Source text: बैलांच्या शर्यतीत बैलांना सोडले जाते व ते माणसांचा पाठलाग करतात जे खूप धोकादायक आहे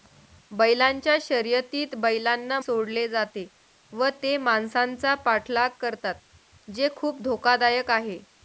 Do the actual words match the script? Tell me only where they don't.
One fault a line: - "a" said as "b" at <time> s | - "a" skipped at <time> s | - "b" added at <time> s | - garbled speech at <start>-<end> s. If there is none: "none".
none